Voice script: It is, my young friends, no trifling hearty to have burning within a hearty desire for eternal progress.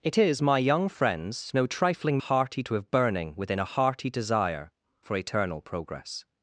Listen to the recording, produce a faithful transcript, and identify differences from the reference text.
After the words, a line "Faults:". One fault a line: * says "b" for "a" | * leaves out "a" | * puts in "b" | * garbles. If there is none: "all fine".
It is, my young friends, no trifling hearty to have burning within a hearty desire for eternal progress.
Faults:
all fine